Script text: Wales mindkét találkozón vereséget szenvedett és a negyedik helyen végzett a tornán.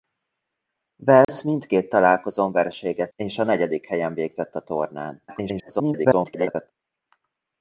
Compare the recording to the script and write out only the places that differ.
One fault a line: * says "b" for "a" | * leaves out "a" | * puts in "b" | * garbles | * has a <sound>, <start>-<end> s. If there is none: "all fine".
* has a dropout, 1.2-1.3 s
* leaves out "szenvedett"
* garbles